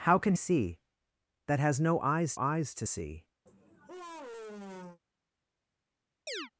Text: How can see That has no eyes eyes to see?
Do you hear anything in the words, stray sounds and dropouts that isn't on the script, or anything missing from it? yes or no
yes